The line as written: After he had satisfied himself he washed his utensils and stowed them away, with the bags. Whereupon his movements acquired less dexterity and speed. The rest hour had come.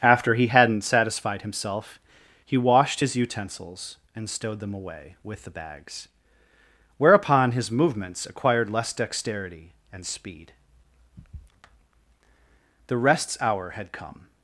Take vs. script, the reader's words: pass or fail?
fail